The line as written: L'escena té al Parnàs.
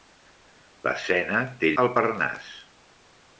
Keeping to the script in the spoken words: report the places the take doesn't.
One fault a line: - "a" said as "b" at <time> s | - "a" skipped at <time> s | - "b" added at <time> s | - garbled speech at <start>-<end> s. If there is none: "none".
none